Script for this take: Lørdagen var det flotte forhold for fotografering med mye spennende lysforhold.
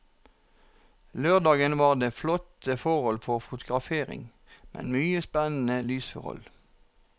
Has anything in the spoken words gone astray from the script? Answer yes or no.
no